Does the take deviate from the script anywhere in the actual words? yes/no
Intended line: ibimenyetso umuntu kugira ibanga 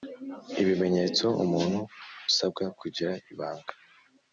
yes